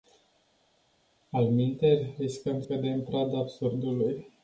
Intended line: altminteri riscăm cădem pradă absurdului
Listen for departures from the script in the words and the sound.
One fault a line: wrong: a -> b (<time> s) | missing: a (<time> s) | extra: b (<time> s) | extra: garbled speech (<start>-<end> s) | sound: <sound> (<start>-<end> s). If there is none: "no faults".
no faults